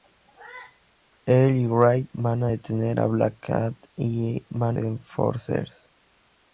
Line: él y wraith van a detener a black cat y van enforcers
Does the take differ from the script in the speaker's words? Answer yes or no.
no